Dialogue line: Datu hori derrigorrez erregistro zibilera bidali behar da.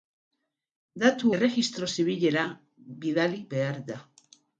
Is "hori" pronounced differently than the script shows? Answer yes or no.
yes